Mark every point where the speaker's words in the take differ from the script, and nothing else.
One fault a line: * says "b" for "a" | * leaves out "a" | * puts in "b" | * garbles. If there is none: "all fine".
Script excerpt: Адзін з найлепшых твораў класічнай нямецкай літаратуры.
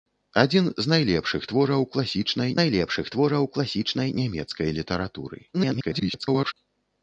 * puts in "найлепшых твораў класічнай"
* garbles